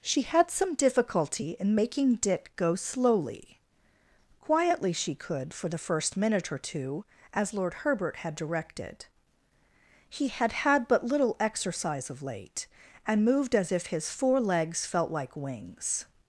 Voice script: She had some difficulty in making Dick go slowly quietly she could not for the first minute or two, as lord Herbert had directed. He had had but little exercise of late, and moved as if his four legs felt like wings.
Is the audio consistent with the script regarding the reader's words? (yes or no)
no